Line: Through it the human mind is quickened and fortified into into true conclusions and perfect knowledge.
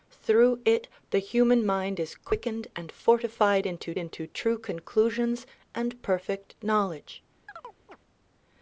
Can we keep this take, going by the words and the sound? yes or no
no